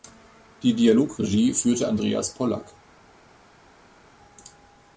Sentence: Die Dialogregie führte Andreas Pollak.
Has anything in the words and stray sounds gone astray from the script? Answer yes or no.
no